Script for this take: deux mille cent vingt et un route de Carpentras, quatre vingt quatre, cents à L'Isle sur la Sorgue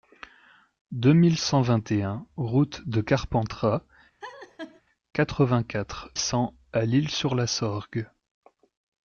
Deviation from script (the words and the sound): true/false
true